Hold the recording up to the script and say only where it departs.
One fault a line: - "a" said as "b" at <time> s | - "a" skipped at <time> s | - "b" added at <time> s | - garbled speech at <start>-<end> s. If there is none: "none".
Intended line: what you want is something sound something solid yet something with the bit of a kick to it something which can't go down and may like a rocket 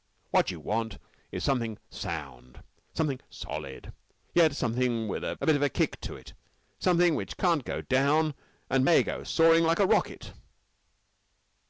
- "the" said as "a" at 5.2 s
- "go soaring" added at 9.0 s